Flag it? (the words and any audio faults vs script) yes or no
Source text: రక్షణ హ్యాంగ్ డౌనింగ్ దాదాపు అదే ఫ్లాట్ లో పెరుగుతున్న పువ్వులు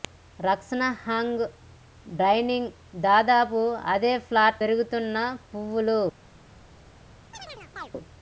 yes